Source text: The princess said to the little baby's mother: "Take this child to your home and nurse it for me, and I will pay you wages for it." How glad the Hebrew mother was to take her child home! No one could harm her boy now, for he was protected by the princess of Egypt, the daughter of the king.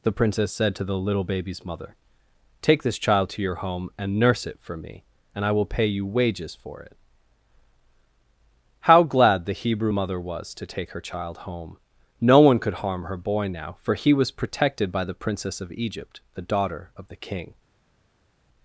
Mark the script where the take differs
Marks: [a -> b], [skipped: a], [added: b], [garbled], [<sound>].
The princess said to the little baby's mother: "Take this child to your home and nurse it for me, and I will pay you wages for it." How glad the Hebrew mother was to take her child home! No one could harm her boy now, for he was protected by the princess of Egypt, the daughter of the king.